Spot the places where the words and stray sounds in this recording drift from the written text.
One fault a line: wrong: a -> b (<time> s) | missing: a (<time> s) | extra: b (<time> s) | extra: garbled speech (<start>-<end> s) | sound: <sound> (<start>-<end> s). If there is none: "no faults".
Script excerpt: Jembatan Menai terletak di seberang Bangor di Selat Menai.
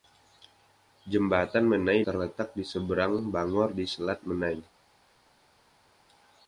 no faults